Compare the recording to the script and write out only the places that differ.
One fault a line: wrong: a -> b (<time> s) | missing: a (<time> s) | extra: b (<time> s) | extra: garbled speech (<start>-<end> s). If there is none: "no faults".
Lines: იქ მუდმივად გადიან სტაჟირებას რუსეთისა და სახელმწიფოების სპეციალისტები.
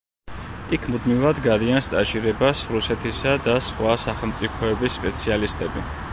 extra: სხვა (3.7 s)